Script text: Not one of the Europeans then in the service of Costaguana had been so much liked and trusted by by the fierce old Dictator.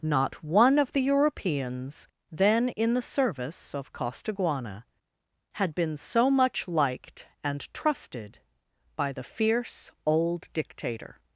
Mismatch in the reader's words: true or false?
true